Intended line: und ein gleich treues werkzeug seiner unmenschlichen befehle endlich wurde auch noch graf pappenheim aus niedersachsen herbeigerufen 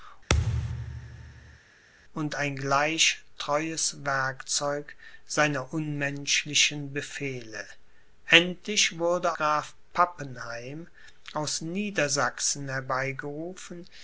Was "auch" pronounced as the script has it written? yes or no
no